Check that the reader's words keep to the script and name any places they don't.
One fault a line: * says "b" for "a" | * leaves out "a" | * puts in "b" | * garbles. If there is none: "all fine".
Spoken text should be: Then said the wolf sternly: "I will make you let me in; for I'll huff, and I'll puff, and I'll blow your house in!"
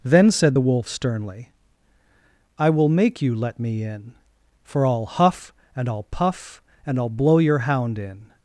* says "hound" for "house"